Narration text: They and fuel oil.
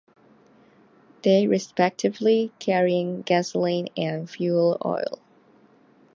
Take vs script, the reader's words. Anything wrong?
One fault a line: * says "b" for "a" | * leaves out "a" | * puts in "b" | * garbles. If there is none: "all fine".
* puts in "respectively carrying gasoline"